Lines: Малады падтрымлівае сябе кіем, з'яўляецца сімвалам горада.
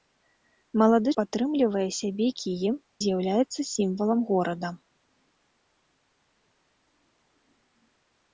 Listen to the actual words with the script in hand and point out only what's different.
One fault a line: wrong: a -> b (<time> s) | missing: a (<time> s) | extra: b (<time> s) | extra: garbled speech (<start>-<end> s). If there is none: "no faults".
no faults